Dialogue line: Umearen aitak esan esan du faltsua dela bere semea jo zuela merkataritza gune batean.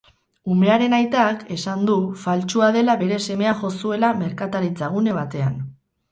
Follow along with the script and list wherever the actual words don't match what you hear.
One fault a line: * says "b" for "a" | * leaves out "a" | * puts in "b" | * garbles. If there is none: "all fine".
* leaves out "esan"